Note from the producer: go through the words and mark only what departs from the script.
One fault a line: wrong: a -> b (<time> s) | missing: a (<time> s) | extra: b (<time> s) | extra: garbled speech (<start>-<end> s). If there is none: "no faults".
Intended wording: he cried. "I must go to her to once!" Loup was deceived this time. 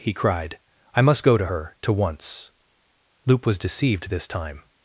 no faults